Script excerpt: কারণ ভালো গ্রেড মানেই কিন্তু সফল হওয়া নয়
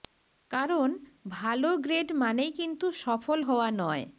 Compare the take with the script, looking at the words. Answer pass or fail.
pass